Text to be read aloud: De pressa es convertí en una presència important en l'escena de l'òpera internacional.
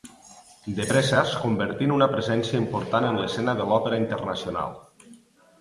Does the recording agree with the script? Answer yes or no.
yes